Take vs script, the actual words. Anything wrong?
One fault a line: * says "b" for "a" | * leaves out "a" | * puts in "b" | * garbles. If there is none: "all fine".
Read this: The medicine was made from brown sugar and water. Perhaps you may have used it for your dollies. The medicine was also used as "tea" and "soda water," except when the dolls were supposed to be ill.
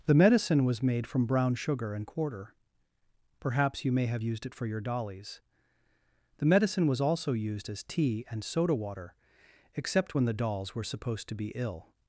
* says "quarter" for "water"